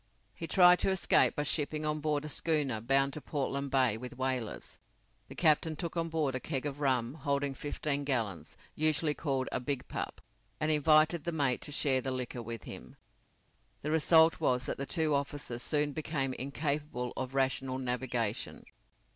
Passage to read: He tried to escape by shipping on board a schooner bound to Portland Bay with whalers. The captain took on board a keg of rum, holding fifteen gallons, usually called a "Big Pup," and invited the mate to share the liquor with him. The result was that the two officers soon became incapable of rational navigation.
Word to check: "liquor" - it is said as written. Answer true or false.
true